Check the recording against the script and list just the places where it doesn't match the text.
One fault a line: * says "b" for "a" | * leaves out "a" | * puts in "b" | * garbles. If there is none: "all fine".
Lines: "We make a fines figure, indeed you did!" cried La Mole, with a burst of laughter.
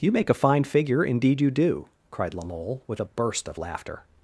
* says "You" for "We"
* says "fine" for "fines"
* says "do" for "did"